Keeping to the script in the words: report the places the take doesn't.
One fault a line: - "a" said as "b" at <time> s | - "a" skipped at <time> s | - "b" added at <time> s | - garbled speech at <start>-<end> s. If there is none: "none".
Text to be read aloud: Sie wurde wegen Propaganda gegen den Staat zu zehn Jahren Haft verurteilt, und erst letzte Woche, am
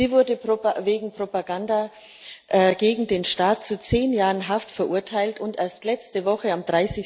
none